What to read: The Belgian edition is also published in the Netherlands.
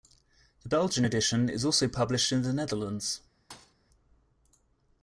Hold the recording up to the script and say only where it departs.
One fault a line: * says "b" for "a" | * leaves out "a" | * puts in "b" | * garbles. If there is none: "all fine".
all fine